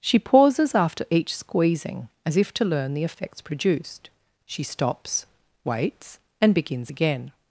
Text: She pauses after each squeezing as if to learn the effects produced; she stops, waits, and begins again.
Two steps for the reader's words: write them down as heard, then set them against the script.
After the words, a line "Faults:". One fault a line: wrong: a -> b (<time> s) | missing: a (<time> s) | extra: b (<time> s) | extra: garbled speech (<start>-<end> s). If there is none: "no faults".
She pauses after each squeezing as if to learn the effects produced; she stops, waits, and begins again.
Faults:
no faults